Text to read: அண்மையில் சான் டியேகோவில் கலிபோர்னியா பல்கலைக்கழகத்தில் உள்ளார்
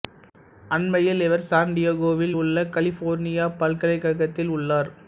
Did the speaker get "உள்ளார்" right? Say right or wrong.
right